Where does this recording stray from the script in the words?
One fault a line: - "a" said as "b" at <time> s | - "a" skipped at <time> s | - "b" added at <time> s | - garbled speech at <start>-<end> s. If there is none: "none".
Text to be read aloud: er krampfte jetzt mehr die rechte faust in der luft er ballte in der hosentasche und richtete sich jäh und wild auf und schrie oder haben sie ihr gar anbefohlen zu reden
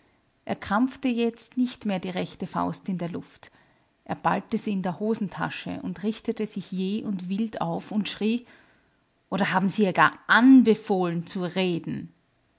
- "nicht" added at 1.6 s
- "sie" added at 4.6 s